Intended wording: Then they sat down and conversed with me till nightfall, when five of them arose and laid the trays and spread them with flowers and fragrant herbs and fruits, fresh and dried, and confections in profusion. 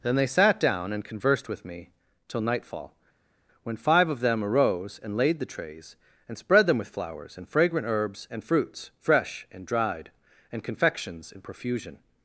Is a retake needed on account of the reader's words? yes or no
no